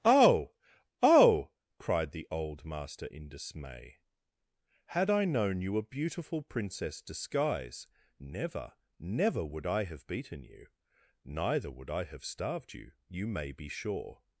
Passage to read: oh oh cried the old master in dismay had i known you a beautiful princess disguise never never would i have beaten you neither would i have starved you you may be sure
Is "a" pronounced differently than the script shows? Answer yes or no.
no